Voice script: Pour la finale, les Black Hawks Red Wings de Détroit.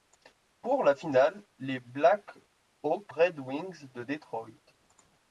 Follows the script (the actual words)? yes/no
yes